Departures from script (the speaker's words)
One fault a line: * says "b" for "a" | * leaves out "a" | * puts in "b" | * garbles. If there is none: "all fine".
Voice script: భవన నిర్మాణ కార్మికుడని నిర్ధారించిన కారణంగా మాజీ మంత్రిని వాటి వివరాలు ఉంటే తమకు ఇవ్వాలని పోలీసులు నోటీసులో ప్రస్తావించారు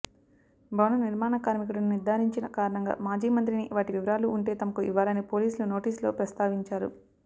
all fine